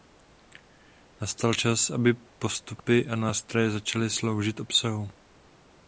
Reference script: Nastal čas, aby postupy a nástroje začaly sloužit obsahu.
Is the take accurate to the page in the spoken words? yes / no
yes